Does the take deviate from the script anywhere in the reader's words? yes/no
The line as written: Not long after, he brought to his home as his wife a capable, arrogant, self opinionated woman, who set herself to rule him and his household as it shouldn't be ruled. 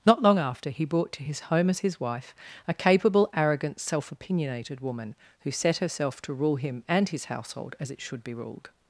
yes